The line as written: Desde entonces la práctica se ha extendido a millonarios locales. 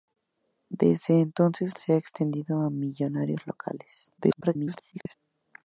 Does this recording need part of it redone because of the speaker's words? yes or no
yes